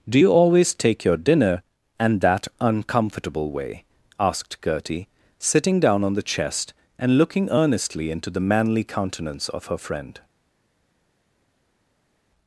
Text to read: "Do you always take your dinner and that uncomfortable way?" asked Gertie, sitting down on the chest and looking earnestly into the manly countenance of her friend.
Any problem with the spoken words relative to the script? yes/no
no